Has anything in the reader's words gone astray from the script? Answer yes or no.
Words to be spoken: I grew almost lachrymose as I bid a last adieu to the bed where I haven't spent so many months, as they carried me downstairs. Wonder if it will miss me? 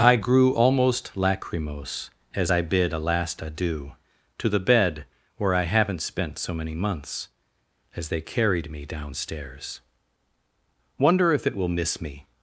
no